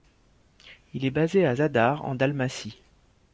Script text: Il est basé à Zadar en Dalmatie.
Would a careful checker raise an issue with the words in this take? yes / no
no